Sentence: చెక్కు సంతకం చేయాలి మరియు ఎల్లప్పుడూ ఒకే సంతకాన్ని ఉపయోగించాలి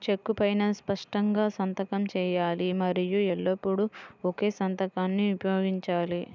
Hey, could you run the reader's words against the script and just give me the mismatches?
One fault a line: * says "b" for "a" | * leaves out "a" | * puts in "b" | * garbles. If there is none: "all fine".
* puts in "పైనా స్పష్టంగా"